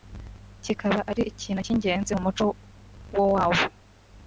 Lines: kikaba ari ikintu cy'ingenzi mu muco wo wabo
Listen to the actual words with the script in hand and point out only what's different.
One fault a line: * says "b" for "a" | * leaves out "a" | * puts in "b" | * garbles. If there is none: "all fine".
all fine